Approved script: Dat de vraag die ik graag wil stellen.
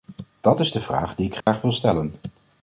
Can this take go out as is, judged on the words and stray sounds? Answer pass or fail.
fail